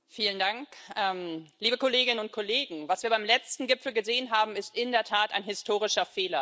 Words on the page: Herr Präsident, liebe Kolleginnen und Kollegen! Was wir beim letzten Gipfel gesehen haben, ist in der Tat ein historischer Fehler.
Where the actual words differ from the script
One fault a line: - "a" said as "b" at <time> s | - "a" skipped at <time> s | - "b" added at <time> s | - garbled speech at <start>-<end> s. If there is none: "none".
none